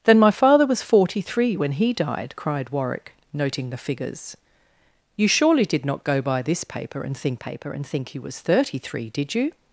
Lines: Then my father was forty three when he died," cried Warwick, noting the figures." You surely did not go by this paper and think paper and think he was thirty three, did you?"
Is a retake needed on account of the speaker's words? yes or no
no